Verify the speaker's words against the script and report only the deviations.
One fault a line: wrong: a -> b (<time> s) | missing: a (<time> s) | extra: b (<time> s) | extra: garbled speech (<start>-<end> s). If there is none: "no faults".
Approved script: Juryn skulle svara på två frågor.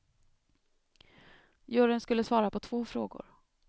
no faults